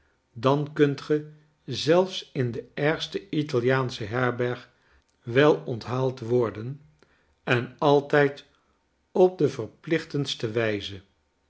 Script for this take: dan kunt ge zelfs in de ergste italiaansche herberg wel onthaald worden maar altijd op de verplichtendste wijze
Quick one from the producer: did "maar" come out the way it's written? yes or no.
no